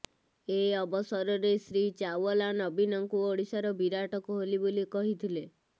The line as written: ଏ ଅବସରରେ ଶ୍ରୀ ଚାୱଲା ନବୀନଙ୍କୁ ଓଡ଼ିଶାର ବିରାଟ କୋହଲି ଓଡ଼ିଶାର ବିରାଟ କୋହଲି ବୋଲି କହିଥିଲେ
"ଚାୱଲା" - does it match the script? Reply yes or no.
yes